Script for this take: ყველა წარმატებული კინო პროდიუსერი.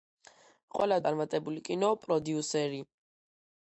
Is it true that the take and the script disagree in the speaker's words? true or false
false